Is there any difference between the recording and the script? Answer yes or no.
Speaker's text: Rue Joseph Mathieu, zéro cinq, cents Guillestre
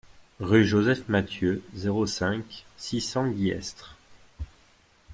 yes